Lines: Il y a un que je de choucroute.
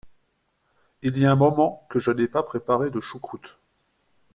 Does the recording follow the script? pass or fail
fail